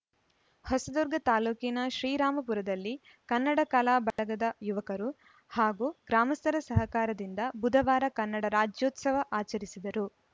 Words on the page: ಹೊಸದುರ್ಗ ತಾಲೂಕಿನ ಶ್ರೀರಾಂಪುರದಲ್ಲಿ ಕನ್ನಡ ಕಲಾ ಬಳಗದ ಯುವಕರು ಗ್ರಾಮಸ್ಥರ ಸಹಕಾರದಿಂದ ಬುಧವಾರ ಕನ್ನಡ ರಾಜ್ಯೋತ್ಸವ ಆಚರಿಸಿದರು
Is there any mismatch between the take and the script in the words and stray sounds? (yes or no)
yes